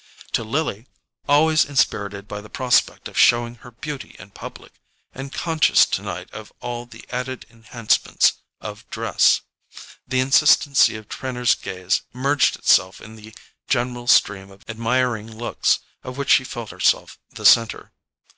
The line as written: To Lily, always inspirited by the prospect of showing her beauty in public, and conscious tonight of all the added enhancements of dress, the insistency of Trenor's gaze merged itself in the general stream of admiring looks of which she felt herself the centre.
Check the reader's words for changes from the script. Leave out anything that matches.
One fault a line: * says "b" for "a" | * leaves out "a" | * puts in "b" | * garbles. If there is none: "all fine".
all fine